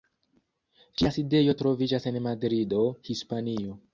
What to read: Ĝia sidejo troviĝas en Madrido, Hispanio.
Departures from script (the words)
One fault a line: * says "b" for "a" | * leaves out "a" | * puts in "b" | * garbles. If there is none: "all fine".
all fine